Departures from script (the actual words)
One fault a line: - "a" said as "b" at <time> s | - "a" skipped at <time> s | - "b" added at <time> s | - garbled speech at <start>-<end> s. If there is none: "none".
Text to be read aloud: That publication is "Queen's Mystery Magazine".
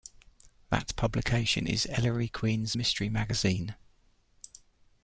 - "Ellery" added at 1.9 s